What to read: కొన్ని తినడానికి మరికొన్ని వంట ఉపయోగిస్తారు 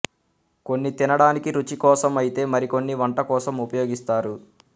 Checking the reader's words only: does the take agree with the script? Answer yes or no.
no